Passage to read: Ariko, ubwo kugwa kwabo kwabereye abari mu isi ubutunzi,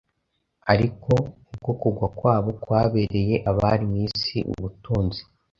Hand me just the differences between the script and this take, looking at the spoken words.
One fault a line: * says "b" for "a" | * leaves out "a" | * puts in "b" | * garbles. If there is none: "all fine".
all fine